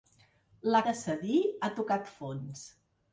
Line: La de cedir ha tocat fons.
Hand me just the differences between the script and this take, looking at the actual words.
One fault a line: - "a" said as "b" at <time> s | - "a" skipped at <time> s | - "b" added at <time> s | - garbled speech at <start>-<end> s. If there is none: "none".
none